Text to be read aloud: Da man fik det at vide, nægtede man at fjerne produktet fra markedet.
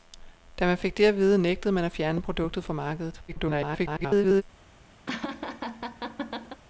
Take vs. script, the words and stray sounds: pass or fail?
fail